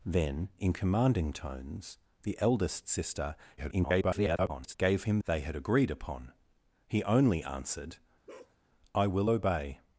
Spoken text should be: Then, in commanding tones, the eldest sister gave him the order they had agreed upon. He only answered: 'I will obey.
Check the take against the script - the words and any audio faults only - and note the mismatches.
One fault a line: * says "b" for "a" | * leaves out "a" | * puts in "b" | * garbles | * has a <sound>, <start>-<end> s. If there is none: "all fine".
* garbles
* leaves out "the order"
* has a bark, 8.3-8.6 s